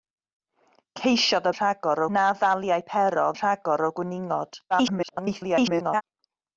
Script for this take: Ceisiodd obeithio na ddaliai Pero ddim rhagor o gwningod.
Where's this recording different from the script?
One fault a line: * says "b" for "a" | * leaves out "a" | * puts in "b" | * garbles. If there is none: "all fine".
* says "rhagor" for "obeithio"
* leaves out "ddim"
* garbles